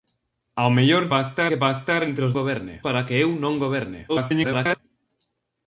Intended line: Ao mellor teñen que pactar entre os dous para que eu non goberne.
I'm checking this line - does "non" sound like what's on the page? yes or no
yes